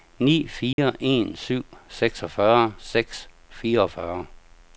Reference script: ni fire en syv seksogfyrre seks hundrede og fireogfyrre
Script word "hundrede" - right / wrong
wrong